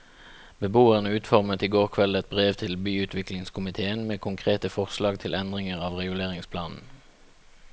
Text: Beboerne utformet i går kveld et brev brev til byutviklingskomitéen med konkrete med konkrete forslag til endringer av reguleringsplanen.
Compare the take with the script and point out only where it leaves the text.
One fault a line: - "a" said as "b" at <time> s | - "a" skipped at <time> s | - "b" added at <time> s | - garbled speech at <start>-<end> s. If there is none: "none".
- "brev" skipped at 2.5 s
- "med konkrete" skipped at 4.7 s